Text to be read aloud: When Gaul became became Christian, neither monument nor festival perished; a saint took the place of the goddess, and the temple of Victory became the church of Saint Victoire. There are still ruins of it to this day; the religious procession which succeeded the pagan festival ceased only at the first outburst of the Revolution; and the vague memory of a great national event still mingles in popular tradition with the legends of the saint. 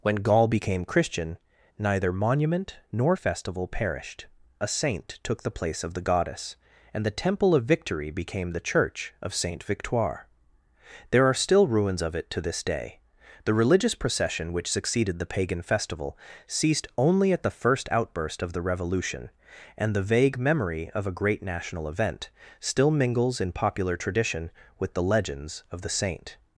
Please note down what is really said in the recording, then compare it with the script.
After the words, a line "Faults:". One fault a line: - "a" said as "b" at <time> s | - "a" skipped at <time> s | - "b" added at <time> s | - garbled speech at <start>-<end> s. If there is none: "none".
When Gaul became Christian, neither monument nor festival perished; a saint took the place of the goddess, and the temple of Victory became the church of Saint Victoire. There are still ruins of it to this day; the religious procession which succeeded the pagan festival ceased only at the first outburst of the Revolution; and the vague memory of a great national event still mingles in popular tradition with the legends of the saint.
Faults:
- "became" skipped at 0.8 s